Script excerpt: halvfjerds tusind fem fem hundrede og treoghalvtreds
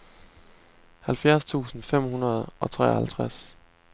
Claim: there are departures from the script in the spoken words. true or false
true